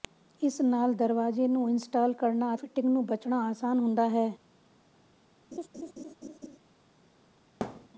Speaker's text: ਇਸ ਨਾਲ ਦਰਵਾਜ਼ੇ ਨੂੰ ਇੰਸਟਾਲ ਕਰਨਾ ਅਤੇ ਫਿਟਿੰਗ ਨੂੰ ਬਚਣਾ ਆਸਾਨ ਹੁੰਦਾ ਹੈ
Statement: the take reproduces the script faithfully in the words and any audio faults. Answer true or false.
false